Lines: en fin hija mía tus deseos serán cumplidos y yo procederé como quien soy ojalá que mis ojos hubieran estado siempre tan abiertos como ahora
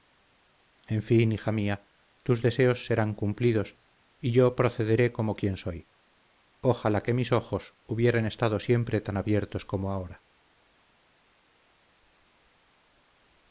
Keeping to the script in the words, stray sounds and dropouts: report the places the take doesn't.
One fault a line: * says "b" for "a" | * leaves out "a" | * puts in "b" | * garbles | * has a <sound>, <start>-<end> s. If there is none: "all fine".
all fine